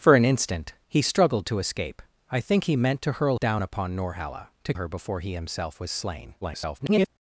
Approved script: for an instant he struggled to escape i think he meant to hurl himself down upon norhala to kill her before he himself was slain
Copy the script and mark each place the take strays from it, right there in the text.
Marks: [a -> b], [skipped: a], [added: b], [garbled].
for an instant he struggled to escape i think he meant to hurl [skipped: himself] down upon norhala to [skipped: kill] her before he himself was slain [garbled]